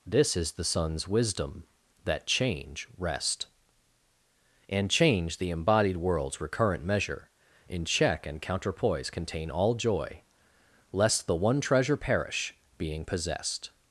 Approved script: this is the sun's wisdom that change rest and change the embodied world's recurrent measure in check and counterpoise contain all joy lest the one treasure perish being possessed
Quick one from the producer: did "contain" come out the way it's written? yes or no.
yes